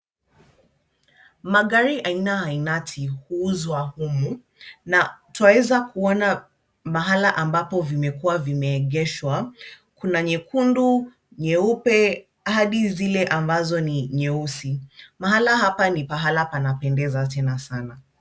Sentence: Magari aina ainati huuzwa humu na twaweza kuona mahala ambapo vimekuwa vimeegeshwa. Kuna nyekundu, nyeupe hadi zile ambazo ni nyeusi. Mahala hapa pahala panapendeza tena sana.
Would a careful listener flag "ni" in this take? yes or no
no